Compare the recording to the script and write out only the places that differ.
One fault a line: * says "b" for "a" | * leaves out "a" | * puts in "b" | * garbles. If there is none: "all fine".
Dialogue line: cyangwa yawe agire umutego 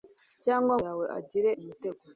all fine